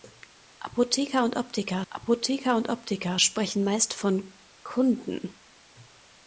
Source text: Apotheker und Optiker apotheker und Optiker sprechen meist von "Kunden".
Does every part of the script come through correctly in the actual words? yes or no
yes